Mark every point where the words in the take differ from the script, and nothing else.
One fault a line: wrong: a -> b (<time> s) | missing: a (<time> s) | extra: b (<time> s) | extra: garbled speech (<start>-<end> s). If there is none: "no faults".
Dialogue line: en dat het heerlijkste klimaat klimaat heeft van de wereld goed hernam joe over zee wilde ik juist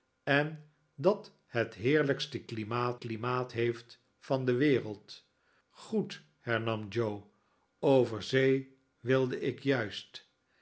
no faults